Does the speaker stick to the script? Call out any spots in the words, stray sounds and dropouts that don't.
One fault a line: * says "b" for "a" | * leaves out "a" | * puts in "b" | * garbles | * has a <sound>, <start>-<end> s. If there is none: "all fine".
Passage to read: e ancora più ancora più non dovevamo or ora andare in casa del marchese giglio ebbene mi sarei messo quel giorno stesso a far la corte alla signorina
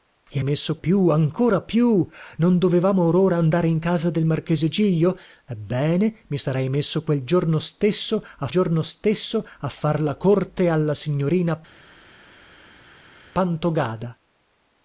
* says "messo" for "ancora"
* puts in "giorno stesso a"